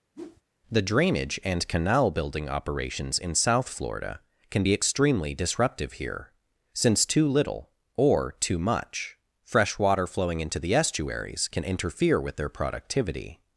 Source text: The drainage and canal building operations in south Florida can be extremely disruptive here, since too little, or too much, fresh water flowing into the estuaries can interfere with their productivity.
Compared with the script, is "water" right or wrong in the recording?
right